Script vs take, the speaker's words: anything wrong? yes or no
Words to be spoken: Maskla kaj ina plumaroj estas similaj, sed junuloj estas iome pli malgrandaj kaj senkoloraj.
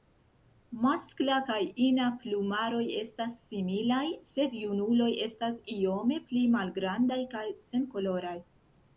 no